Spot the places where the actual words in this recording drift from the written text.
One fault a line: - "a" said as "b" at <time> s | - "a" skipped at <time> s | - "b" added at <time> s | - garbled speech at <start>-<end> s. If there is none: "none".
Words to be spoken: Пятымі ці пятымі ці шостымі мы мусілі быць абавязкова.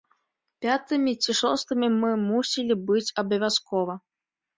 - "пятымі ці" skipped at 1.4 s